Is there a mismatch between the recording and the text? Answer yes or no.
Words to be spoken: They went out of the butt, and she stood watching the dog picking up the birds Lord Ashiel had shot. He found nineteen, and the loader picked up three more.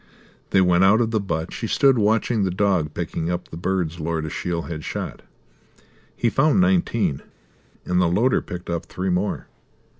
yes